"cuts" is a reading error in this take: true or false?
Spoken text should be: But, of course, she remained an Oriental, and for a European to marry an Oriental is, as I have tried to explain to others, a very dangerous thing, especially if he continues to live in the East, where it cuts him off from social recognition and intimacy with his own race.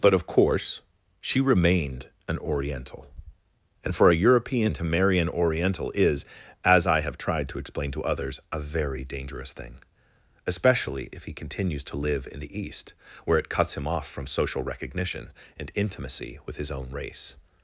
false